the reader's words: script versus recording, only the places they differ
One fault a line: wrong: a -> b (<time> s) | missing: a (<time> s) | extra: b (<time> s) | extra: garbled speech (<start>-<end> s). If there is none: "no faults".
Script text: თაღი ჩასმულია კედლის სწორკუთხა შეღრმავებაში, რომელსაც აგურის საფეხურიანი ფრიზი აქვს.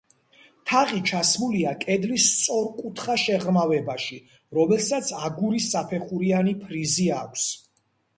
no faults